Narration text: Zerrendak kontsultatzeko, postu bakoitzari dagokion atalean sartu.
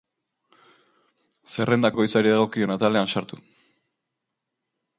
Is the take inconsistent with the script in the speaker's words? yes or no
yes